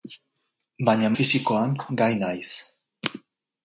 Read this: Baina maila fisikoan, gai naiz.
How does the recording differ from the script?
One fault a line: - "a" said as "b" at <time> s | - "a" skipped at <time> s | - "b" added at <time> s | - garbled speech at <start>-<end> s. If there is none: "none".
- "maila" skipped at 1.1 s